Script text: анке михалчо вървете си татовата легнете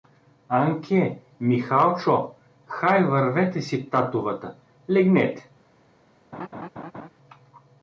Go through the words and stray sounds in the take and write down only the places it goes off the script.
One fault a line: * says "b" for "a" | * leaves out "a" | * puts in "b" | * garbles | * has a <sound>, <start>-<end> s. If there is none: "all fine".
* puts in "хай"
* has a laugh, 6.3-7.1 s